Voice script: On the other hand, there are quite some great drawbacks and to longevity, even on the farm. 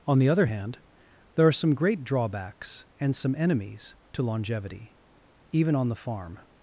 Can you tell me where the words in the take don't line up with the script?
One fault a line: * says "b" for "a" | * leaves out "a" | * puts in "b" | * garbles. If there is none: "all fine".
* leaves out "quite"
* puts in "some enemies"